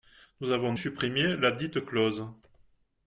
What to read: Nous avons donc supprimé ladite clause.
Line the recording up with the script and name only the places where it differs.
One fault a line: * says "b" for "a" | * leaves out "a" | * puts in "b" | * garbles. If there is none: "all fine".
* leaves out "donc"